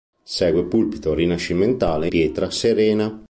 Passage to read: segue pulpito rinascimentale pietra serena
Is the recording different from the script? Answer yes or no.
no